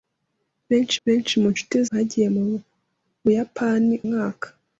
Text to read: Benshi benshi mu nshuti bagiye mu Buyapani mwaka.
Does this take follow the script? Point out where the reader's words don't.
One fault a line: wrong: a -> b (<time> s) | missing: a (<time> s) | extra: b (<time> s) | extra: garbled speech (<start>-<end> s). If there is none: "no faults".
no faults